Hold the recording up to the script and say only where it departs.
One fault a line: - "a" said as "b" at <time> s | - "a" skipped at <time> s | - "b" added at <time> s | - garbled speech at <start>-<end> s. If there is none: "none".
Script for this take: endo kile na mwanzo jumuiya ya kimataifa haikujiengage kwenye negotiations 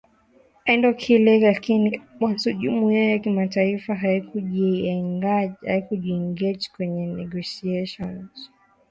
- "na" said as "lakini" at 1.4 s